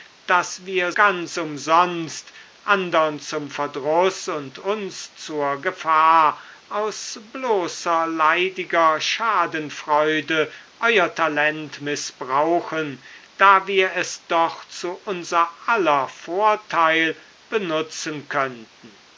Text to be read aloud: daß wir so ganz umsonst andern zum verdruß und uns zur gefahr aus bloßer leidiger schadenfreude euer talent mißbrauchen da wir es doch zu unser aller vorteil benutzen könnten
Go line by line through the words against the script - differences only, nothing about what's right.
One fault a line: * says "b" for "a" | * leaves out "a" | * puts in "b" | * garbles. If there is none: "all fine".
* leaves out "so"